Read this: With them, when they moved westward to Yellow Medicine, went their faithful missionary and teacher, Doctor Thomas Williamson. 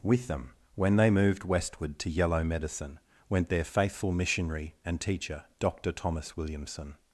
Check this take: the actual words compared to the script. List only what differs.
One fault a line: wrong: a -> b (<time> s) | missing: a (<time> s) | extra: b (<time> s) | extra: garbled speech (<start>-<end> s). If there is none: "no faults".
no faults